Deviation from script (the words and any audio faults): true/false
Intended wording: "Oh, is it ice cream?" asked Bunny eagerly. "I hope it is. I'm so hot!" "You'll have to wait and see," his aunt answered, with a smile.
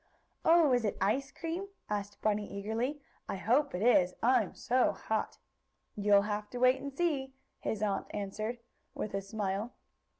false